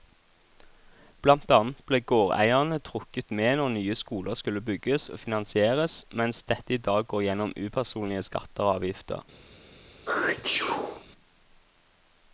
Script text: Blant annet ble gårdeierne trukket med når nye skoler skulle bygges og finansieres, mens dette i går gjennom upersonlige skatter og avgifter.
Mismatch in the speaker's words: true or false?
true